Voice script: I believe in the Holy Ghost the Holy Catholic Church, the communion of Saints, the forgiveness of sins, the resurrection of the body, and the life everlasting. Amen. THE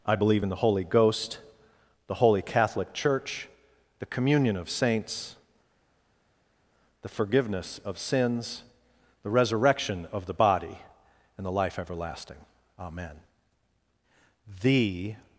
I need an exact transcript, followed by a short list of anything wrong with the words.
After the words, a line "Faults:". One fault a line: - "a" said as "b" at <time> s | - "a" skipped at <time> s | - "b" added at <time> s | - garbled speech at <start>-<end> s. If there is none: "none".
I believe in the Holy Ghost the Holy Catholic Church, the communion of Saints, the forgiveness of sins, the resurrection of the body, and the life everlasting. Amen. THE
Faults:
none